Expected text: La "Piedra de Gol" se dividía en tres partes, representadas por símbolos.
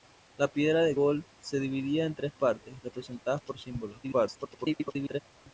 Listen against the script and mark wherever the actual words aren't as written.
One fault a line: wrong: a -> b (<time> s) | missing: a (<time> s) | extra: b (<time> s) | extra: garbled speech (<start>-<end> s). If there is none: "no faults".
extra: garbled speech (4.0-5.2 s)